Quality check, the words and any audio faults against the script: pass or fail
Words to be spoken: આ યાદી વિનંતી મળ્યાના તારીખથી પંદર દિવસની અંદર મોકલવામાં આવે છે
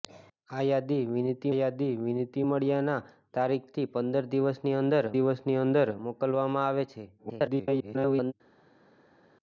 fail